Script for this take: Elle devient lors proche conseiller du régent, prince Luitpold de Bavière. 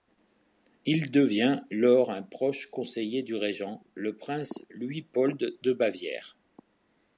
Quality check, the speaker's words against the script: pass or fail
fail